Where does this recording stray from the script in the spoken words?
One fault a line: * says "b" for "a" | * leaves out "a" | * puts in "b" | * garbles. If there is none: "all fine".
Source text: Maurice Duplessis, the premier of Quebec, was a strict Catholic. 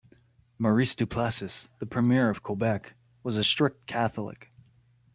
all fine